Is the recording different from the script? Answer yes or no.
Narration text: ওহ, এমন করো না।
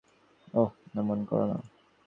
no